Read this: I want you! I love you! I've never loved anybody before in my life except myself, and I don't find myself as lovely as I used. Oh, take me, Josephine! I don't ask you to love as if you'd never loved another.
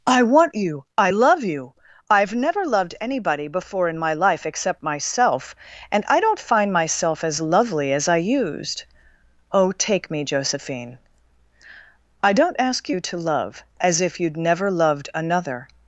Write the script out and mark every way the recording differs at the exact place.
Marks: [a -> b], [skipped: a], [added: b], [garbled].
I want you! I love you! I've never loved anybody before in my life except myself, and I don't find myself as lovely as I used. Oh, take me, Josephine! I don't ask you to love as if you'd never loved another.